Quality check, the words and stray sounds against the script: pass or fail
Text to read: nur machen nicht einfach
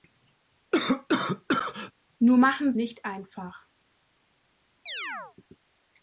fail